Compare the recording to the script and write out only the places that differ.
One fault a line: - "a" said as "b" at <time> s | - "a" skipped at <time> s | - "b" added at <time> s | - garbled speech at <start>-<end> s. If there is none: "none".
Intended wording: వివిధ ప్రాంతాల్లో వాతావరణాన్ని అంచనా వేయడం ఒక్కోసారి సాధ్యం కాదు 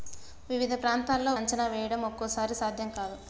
- "వాతావరణాన్ని" skipped at 1.3 s